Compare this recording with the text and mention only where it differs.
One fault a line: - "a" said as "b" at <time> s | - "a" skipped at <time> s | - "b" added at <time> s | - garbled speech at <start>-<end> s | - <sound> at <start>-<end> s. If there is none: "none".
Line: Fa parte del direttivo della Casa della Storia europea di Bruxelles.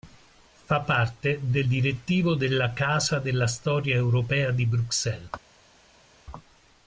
none